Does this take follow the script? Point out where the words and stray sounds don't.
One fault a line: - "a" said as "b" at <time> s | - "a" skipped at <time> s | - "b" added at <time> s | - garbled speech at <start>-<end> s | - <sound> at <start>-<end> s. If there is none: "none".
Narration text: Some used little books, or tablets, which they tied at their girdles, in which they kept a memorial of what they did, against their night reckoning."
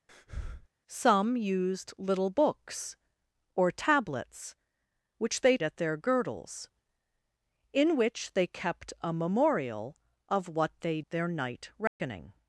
- breath at 0.1-0.7 s
- "tied" skipped at 5.6 s
- "did against" skipped at 11.0 s
- dropout at 11.9-12.0 s